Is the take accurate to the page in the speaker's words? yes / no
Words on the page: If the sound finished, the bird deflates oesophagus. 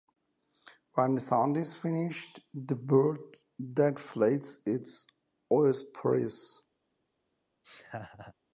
no